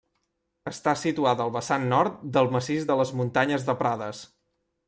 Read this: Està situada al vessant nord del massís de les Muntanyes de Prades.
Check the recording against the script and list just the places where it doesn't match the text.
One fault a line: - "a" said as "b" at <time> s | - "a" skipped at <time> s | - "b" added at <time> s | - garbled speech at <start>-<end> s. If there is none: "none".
none